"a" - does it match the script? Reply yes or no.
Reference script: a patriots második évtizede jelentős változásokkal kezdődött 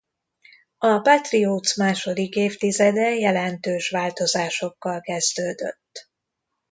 yes